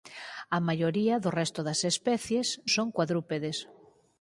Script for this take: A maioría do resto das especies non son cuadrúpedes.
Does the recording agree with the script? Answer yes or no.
no